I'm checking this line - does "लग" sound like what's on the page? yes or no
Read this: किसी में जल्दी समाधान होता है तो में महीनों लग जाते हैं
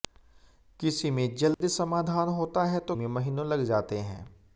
yes